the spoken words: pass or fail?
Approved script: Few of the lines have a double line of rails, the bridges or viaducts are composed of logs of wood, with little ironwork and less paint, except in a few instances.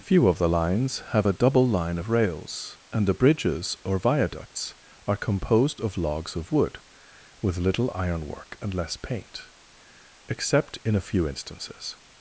fail